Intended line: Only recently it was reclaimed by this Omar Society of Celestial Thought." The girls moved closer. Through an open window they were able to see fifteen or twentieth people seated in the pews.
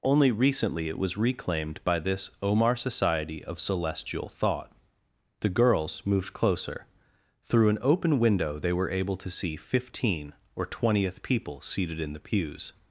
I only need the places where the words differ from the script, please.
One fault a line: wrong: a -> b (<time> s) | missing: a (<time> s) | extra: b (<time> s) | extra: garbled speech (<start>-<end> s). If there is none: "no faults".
no faults